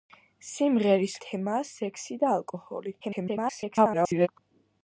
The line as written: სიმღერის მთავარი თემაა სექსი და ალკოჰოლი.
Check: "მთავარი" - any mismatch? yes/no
yes